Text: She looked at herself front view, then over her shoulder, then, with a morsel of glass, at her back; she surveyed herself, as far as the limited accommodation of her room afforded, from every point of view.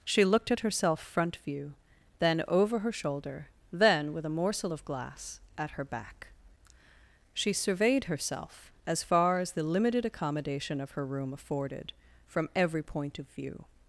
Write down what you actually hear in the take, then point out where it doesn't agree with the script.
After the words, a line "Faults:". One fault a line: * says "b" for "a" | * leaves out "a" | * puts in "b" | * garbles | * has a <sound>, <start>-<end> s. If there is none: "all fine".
She looked at herself front view, then over her shoulder, then, with a morsel of glass, at her back; she surveyed herself, as far as the limited accommodation of her room afforded, from every point of view.
Faults:
all fine